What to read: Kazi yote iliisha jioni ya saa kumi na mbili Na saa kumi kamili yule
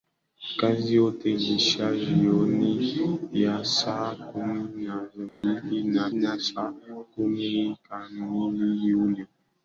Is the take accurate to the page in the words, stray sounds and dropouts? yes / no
no